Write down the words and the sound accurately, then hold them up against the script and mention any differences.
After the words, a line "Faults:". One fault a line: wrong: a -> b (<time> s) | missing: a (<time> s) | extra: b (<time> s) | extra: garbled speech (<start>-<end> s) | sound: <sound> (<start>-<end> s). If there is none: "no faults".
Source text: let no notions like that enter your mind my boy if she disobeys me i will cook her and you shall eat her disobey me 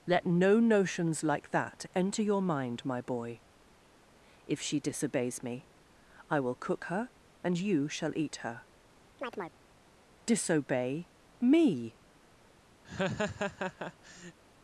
let no notions like that enter your mind my boy if she disobeys me i will cook her and you shall eat her disobey me
Faults:
sound: chirp (9.2-9.6 s)
sound: laugh (12.8-14.4 s)